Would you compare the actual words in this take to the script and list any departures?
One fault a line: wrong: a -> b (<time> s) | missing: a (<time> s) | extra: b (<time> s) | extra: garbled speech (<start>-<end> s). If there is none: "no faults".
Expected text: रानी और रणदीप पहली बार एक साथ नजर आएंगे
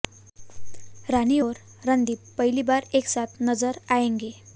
no faults